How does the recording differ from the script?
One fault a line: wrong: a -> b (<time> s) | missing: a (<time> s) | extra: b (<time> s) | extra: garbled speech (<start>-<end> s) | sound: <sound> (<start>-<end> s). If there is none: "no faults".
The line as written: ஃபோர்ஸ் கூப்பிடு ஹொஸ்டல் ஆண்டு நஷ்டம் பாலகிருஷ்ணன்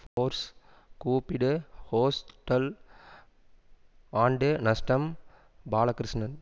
sound: dropout (0.1-0.2 s)